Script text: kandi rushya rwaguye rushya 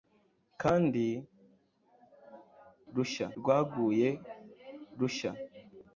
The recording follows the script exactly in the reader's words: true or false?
true